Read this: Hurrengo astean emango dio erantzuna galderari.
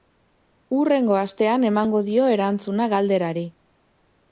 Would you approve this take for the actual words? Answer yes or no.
yes